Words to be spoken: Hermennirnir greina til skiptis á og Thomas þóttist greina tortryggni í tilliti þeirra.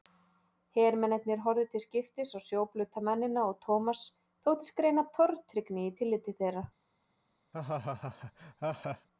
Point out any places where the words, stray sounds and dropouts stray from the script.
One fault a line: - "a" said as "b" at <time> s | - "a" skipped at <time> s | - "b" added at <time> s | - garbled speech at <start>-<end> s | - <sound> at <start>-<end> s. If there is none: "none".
- "greina" said as "horfðu" at 1.5 s
- "sjóblauta mennina" added at 2.5 s
- laugh at 7.5-9.1 s